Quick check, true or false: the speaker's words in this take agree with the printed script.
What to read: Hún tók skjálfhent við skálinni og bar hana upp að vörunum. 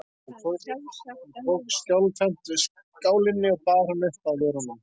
true